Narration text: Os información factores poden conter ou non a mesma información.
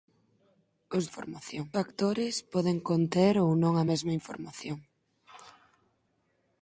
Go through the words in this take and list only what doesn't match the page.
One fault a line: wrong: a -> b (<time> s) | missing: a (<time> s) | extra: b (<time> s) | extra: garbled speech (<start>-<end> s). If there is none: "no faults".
no faults